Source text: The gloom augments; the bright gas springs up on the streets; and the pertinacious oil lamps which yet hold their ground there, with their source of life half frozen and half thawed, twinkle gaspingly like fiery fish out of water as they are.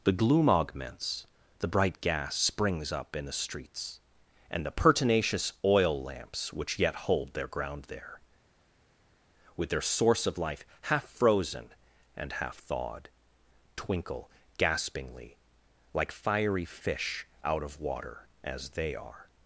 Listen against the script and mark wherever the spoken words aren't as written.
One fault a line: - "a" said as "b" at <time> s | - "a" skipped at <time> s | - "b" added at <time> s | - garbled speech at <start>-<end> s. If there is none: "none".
- "on" said as "in" at 3.1 s